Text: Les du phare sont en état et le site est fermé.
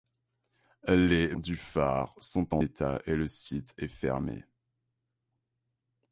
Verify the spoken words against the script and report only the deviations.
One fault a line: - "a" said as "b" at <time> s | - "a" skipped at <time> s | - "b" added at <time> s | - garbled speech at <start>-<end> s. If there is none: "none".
none